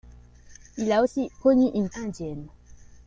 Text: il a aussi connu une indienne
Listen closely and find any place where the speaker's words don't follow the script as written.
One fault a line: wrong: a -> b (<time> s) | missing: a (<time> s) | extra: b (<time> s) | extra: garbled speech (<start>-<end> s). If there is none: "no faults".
no faults